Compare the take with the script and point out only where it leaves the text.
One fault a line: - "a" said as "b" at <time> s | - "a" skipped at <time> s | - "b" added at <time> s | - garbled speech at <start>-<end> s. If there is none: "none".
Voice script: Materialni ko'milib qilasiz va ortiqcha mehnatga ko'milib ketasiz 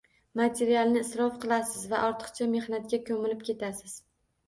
- "ko'milib" said as "isrof" at 1.1 s